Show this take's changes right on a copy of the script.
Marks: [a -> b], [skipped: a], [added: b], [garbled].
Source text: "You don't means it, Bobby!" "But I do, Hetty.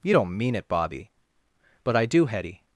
"You don't [means -> mean] it, Bobby!" "But I do, Hetty.